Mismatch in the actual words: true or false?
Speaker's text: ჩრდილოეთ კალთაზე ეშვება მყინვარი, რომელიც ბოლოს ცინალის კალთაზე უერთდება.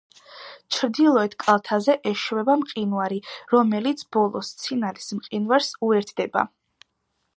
true